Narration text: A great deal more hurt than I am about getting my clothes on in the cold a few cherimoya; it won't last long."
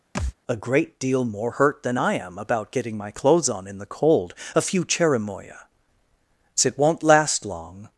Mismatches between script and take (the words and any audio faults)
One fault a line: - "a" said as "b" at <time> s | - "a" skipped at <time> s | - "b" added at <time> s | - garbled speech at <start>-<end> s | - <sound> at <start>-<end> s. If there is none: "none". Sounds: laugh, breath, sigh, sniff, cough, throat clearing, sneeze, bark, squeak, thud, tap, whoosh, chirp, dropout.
- thud at 0.1-0.3 s